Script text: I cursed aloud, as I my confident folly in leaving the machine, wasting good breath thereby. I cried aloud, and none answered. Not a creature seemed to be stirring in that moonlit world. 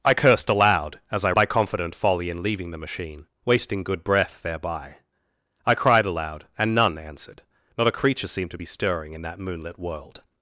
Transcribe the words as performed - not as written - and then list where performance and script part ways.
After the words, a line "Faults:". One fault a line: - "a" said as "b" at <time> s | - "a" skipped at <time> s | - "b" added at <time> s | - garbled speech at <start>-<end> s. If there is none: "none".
I cursed aloud, as I my confident folly in leaving the machine, wasting good breath thereby. I cried aloud, and none answered. Not a creature seemed to be stirring in that moonlit world.
Faults:
none